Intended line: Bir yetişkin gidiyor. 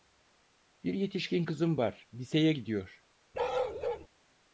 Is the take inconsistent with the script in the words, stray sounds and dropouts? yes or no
yes